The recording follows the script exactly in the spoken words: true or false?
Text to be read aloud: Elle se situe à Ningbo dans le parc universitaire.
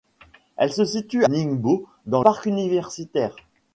false